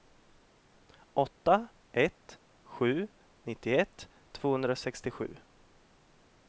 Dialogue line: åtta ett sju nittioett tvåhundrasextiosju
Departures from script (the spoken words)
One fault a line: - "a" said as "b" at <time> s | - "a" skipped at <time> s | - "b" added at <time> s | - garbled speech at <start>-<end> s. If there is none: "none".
none